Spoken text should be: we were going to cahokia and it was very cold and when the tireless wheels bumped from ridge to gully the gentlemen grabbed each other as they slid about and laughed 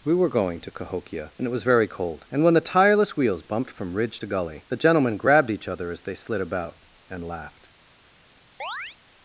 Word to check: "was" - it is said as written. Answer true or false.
true